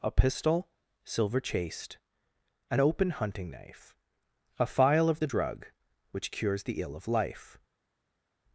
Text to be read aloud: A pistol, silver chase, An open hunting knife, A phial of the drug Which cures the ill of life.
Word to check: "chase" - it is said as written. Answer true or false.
false